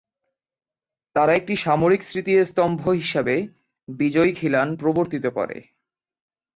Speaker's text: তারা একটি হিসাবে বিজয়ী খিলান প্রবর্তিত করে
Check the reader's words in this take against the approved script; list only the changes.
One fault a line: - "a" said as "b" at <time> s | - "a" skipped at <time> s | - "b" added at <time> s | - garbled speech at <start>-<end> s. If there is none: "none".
- "সামরিক স্মৃতিস্তম্ভ" added at 1.6 s